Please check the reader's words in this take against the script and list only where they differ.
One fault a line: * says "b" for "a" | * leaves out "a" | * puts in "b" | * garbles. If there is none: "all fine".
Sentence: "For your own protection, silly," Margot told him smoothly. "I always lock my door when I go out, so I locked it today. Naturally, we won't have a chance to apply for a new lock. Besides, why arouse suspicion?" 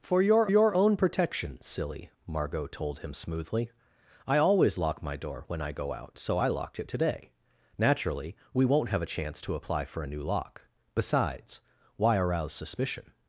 * puts in "your"